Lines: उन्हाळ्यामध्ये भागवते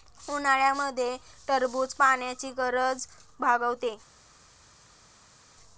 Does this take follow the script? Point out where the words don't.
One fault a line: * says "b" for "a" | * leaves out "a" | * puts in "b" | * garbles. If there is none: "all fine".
* puts in "टरबूज पाण्याची गरज"